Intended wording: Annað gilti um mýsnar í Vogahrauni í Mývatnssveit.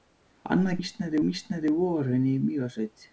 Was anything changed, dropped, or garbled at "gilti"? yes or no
yes